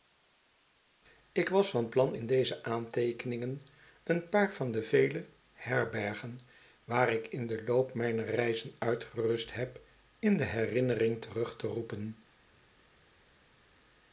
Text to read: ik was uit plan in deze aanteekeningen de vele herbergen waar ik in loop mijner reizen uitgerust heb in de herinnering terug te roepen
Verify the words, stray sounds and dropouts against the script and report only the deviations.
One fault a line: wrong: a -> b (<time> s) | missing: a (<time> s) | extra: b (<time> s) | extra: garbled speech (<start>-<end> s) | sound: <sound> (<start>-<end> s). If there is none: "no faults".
wrong: uit -> van (1.7 s)
extra: een paar van (4.0 s)
extra: den (7.5 s)